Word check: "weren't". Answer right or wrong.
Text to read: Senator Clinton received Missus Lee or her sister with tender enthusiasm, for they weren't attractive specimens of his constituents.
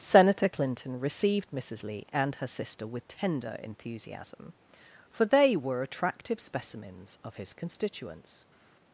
wrong